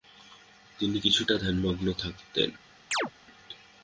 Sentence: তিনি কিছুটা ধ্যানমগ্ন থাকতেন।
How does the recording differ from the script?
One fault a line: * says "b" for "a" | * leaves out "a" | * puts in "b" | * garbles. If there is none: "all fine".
all fine